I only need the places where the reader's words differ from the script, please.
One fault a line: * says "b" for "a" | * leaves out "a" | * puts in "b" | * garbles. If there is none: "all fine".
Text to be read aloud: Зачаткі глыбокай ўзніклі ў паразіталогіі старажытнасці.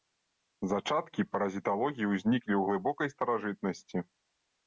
* says "паразіталогіі" for "глыбокай"
* says "глыбокай" for "паразіталогіі"